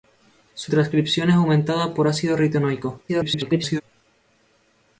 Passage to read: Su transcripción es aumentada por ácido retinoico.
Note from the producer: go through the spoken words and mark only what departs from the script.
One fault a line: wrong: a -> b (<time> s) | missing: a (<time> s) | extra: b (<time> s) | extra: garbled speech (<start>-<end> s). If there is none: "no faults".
extra: garbled speech (3.1-3.8 s)